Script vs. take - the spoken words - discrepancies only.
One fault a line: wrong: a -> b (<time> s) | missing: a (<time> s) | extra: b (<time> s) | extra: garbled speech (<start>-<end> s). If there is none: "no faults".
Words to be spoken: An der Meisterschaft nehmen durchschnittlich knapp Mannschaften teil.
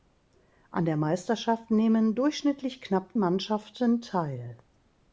no faults